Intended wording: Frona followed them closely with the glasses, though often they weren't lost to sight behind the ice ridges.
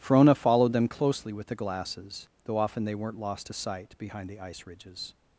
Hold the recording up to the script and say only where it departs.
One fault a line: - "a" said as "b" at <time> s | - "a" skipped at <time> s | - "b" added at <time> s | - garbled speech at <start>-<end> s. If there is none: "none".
none